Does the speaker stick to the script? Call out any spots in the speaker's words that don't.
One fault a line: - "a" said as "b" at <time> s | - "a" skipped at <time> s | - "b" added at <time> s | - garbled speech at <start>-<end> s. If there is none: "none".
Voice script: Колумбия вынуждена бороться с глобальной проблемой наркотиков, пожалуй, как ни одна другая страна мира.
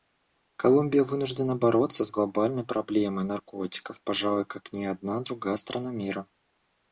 none